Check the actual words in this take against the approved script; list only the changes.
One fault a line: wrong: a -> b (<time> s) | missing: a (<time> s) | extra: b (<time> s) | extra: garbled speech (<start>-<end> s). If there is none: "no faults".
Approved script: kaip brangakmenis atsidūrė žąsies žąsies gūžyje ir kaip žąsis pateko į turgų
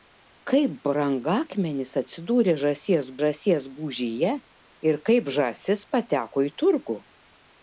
no faults